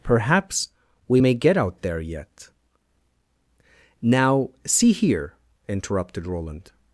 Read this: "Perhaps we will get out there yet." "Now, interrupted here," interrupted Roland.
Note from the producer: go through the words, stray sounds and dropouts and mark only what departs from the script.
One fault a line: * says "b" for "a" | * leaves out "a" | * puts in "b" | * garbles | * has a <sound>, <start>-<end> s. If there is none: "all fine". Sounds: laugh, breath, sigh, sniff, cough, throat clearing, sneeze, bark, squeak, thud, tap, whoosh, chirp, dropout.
* says "may" for "will"
* says "see" for "interrupted"